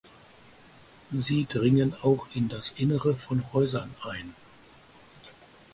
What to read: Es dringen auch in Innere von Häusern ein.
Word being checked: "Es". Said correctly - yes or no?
no